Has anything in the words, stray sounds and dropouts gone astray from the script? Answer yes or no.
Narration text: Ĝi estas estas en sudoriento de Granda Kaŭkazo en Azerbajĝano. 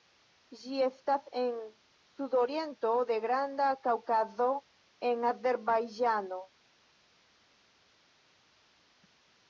yes